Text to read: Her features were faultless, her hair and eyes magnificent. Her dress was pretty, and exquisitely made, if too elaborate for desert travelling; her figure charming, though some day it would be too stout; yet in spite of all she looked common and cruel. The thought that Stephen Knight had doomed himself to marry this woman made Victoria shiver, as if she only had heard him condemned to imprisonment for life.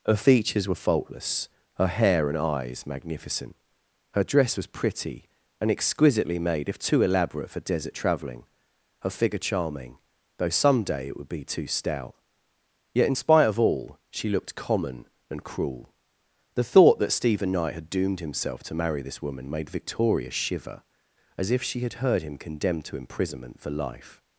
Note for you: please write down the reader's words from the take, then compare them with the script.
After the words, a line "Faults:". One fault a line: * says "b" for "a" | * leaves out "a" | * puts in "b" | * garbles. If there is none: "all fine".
Her features were faultless, her hair and eyes magnificent. Her dress was pretty, and exquisitely made, if too elaborate for desert travelling; her figure charming, though some day it would be too stout; yet in spite of all she looked common and cruel. The thought that Stephen Knight had doomed himself to marry this woman made Victoria shiver, as if she had heard him condemned to imprisonment for life.
Faults:
* leaves out "only"